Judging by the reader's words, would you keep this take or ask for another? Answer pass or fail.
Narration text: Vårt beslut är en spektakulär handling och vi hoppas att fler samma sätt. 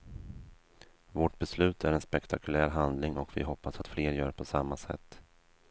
fail